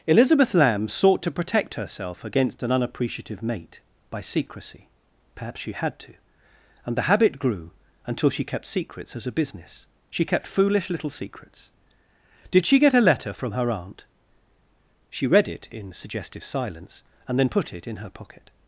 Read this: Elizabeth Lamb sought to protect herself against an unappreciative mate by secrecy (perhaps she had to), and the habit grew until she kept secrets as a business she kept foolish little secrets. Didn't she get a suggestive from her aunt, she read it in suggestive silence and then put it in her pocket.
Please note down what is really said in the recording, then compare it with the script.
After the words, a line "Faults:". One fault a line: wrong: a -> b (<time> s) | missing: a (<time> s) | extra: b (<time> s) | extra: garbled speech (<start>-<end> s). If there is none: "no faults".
Elizabeth Lamb sought to protect herself against an unappreciative mate by secrecy (perhaps she had to), and the habit grew until she kept secrets as a business she kept foolish little secrets. Did she get a letter from her aunt, she read it in suggestive silence and then put it in her pocket.
Faults:
wrong: Didn't -> Did (12.5 s)
wrong: suggestive -> letter (13.0 s)